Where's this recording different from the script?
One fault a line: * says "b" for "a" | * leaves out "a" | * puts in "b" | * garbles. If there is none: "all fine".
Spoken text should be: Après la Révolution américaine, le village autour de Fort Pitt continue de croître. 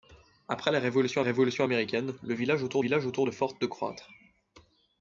* puts in "Révolution"
* puts in "village autour"
* leaves out "Pitt continue"